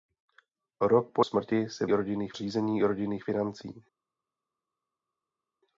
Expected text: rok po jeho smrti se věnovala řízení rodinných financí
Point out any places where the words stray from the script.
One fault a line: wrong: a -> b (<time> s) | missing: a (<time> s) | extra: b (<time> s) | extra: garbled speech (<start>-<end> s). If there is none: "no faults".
missing: jeho (1.2 s)
wrong: věnovala -> rodinných (1.9 s)